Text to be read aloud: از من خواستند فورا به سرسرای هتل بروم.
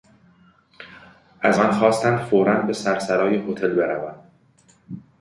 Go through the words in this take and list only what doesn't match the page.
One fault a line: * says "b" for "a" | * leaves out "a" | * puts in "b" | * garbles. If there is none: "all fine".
all fine